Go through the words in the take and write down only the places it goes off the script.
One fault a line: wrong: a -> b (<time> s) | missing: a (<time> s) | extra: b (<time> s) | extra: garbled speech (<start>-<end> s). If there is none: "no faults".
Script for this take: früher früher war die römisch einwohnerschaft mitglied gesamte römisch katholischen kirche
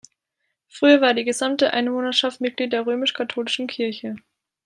missing: früher (1.0 s)
wrong: römisch -> gesamte (1.2 s)
wrong: gesamte -> der (2.7 s)